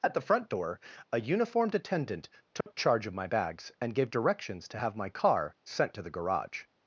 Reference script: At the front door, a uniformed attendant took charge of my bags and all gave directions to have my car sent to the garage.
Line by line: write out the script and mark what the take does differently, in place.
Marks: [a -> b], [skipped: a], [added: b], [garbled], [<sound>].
At the front door, a uniformed attendant took [dropout] charge of my bags and [skipped: all] gave directions to have my car sent to the garage.